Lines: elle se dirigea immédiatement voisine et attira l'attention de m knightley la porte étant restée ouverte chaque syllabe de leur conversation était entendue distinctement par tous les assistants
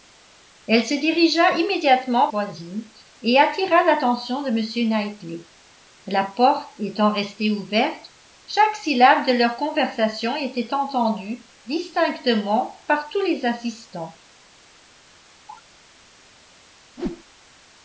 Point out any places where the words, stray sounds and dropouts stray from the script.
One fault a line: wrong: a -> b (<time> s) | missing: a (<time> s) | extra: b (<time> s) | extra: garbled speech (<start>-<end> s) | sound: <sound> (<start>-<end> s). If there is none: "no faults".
sound: cough (15.5-15.6 s)
sound: whoosh (17.0-17.2 s)